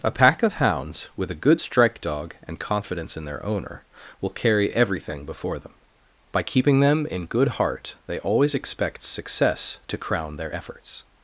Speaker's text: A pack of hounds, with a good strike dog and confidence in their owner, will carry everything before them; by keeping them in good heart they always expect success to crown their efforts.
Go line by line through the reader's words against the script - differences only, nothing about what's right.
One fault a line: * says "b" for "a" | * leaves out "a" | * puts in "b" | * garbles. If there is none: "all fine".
all fine